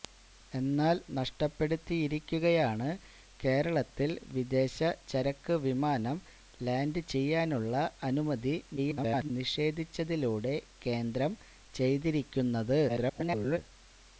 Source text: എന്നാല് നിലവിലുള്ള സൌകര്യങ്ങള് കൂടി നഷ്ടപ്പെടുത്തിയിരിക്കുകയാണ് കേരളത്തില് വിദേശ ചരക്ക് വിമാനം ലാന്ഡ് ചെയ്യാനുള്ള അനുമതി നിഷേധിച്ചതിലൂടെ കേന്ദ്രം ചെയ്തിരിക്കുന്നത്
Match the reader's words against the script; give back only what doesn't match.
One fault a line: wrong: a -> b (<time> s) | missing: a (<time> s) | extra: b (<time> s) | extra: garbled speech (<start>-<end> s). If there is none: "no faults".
missing: നിലവിലുള്ള സൌകര്യങ്ങള് കൂടി (1.0 s)
extra: garbled speech (8.8-9.3 s)
extra: garbled speech (12.9-13.6 s)